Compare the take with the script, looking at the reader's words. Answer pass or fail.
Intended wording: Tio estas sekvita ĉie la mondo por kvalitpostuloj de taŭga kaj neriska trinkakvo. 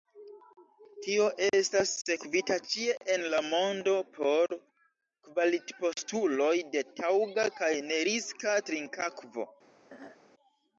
fail